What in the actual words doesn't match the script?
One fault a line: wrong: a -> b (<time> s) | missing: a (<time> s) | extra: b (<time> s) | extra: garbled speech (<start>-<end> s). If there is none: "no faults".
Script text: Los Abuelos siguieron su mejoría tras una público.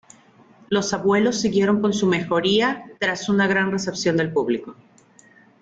extra: con (1.8 s)
extra: gran recepción del (3.5 s)